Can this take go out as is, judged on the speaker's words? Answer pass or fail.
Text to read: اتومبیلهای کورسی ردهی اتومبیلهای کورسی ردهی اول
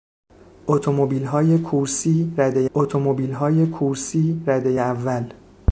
pass